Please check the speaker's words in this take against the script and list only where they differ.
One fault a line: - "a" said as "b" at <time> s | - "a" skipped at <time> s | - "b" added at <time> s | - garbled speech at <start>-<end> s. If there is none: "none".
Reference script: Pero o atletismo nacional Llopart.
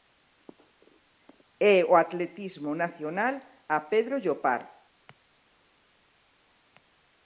- "Pero" said as "E" at 1.6 s
- "a Pedro" added at 3.7 s